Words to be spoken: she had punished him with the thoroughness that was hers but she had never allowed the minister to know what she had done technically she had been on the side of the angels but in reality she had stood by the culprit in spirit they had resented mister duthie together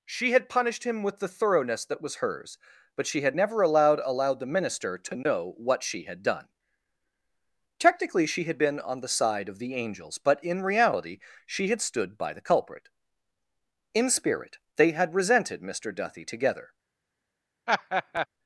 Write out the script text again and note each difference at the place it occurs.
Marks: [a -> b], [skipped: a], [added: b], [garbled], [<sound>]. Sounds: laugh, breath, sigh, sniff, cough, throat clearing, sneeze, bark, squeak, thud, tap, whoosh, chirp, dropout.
she had punished him with the thoroughness that was hers but she had never allowed [added: allowed] the minister to know what she had done technically she had been on the side of the angels but in reality she had stood by the culprit in spirit they had resented mister duthie together [laugh]